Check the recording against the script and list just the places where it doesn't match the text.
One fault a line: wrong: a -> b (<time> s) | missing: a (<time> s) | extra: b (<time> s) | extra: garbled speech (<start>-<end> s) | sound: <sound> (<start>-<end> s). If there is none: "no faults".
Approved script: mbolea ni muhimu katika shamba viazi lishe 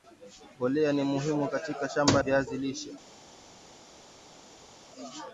no faults